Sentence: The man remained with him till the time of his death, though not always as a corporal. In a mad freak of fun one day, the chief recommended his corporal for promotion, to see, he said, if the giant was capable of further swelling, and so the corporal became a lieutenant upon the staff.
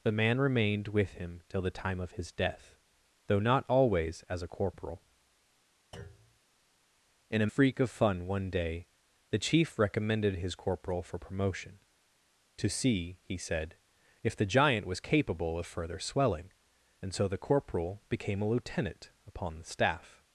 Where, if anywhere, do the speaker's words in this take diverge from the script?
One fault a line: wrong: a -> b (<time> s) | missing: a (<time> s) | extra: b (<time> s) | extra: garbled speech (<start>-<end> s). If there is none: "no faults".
missing: mad (7.5 s)